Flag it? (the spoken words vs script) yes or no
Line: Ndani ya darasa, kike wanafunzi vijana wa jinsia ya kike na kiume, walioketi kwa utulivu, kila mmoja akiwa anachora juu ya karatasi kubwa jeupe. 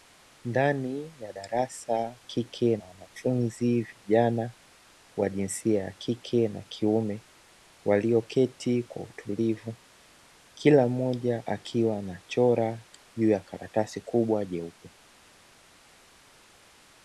no